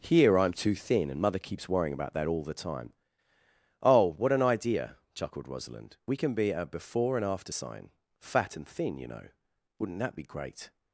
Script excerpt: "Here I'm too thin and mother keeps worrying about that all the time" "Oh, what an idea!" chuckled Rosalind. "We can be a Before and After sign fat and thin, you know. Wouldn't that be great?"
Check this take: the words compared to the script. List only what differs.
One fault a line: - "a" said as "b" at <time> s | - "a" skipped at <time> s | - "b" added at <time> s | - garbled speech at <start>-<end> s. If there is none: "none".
none